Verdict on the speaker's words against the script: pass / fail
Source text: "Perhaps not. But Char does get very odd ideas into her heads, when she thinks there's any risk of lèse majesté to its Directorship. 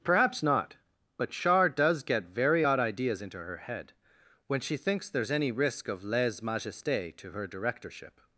fail